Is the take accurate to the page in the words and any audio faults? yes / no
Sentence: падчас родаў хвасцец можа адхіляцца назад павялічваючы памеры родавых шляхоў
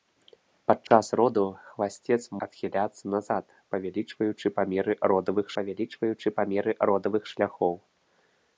no